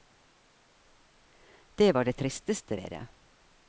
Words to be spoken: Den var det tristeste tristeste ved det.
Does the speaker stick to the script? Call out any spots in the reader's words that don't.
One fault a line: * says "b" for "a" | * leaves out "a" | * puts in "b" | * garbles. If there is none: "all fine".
* says "Det" for "Den"
* leaves out "tristeste"